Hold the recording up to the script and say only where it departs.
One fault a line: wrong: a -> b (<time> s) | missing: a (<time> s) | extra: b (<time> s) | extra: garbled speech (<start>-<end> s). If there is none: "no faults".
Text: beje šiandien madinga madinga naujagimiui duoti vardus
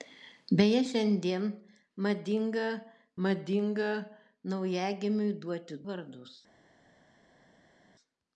no faults